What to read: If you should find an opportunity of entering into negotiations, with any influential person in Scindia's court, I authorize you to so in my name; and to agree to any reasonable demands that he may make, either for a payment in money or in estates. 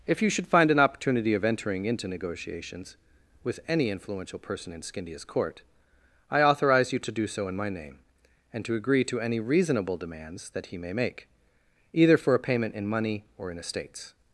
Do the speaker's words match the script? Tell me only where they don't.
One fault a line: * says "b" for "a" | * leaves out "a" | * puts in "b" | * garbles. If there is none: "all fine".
* puts in "do"